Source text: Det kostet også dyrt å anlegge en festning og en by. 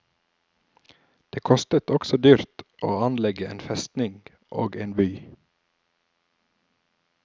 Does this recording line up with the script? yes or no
yes